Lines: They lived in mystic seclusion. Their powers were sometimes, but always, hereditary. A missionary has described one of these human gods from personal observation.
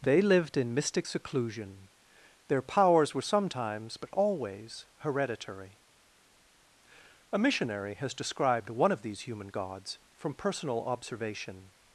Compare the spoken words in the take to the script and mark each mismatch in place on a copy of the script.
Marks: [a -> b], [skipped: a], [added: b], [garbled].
They lived in mystic seclusion. Their powers were sometimes, but always, hereditary. A missionary has described one of these human gods from personal observation.